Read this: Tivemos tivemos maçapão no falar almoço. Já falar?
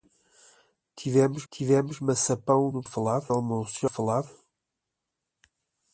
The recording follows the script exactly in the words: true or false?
true